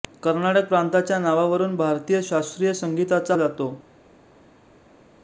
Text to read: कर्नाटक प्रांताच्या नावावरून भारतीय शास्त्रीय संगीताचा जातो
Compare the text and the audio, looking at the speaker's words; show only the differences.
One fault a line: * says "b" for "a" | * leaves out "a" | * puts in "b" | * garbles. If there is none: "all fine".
all fine